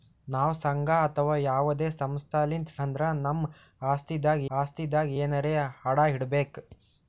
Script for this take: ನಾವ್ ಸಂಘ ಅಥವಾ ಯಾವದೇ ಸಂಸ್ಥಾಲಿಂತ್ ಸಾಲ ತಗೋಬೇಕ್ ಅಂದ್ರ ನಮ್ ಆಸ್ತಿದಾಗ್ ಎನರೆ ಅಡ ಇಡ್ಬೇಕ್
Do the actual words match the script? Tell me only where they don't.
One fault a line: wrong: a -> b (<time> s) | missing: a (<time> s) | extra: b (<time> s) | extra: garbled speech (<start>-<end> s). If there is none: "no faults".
missing: ಸಾಲ ತಗೋಬೇಕ್ (2.7 s)
extra: ಆಸ್ತಿದಾಗ್ (4.5 s)